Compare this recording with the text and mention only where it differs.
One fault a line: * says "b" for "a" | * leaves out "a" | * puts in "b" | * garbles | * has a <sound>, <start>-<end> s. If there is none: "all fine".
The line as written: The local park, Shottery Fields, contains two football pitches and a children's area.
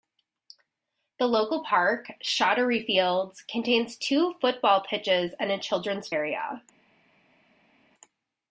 all fine